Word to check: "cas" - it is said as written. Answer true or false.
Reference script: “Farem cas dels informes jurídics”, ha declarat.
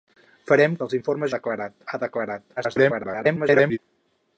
false